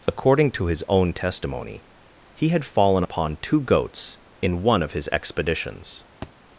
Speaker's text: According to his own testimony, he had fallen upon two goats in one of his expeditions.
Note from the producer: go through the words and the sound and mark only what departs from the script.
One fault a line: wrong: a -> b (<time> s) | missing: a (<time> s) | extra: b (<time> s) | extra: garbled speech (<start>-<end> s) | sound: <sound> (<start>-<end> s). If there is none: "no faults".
sound: thud (6.2-6.3 s)